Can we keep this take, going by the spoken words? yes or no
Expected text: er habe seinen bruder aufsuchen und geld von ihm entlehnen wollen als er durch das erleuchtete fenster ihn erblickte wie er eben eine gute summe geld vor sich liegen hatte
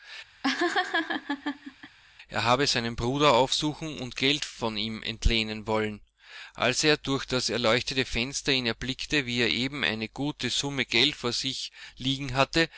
yes